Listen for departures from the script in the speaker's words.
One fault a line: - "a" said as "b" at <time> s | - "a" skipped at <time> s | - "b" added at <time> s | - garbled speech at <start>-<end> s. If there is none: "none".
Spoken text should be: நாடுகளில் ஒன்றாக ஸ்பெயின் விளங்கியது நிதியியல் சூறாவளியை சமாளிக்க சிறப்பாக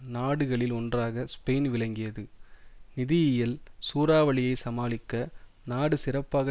- "நாடு" added at 5.7 s